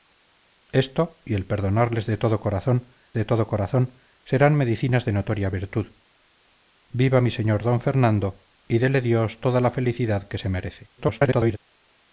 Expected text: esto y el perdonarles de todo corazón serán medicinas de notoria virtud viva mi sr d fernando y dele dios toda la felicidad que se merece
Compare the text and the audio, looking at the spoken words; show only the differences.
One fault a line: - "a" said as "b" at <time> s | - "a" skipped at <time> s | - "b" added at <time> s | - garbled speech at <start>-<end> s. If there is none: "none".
- "de todo corazón" added at 3.1 s
- garbled speech at 11.0-11.6 s